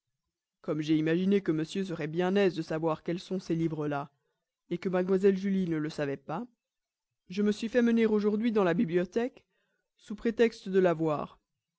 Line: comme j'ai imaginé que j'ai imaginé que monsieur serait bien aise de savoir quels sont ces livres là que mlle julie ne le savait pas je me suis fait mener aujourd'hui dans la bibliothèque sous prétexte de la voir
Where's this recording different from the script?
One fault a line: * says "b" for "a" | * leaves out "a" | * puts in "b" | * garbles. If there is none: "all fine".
* leaves out "j'ai imaginé que"